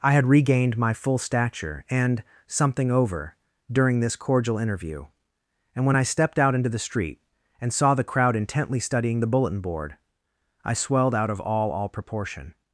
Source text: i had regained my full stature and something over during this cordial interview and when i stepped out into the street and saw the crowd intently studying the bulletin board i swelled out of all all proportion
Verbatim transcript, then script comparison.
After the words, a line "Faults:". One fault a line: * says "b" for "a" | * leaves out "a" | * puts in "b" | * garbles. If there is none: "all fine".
i had regained my full stature and something over during this cordial interview and when i stepped out into the street and saw the crowd intently studying the bulletin board i swelled out of all all proportion
Faults:
all fine